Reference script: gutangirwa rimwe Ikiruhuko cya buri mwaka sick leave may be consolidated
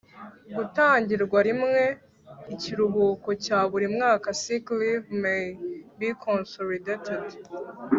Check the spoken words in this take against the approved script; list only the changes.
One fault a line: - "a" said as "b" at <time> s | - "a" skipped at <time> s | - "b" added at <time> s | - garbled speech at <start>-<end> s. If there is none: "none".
none